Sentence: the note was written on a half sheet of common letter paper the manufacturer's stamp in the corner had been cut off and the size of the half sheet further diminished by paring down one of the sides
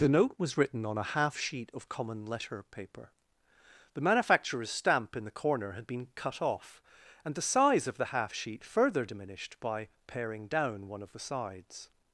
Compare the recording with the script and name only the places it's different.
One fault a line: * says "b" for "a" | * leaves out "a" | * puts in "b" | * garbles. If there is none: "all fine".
all fine